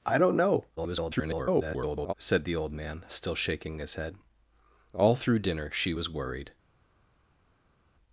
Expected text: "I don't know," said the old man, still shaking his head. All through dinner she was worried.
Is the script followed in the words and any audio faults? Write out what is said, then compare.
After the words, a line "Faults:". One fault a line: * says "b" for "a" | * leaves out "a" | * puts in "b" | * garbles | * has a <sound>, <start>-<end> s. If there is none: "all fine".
"I don't know," [garbled] said the old man, still shaking his head. All through dinner she was worried.
Faults:
* garbles